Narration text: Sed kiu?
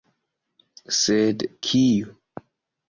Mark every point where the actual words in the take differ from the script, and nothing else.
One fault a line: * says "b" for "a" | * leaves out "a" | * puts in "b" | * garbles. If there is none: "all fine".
all fine